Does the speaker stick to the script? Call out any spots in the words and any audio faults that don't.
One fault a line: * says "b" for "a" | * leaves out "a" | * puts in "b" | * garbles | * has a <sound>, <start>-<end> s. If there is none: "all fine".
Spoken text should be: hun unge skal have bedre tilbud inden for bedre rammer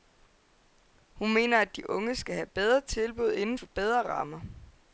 * puts in "mener at de"